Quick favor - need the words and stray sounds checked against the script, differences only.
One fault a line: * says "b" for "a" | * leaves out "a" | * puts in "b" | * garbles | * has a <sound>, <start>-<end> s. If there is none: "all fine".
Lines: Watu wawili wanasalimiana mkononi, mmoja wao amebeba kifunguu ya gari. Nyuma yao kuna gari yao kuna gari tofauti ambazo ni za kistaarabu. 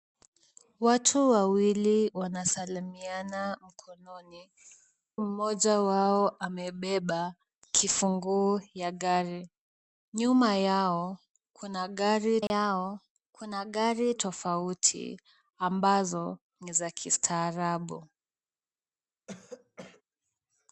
* has a dropout, 12.5-12.5 s
* has a throat clearing, 19.3-20.0 s